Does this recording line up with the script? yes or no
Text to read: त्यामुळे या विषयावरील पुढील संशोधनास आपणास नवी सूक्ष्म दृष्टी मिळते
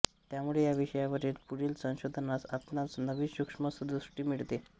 yes